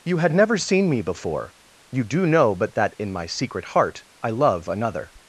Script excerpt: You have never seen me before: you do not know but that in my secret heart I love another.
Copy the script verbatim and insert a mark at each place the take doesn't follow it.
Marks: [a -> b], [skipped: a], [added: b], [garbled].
You [have -> had] never seen me before: you do [skipped: not] know but that in my secret heart I love another.